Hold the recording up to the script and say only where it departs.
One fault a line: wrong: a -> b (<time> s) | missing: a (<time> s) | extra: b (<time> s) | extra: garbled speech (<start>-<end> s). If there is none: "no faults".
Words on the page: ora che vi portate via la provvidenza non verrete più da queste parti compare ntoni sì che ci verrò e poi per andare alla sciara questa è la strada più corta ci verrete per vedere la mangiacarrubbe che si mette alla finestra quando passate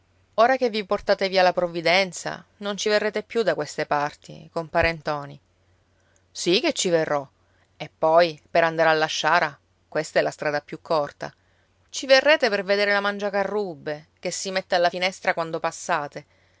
extra: ci (2.8 s)